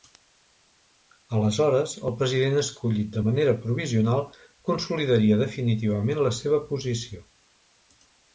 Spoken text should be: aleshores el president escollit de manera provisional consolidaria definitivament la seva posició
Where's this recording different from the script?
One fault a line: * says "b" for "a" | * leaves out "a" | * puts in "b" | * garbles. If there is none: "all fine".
all fine